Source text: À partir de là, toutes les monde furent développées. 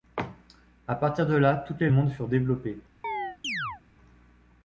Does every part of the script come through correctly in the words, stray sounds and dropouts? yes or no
no